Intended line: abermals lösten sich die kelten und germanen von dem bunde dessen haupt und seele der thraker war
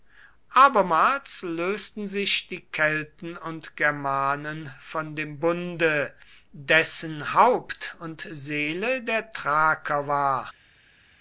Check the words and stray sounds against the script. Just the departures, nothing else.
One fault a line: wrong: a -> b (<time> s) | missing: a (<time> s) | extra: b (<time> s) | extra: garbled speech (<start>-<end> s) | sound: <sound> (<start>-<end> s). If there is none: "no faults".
no faults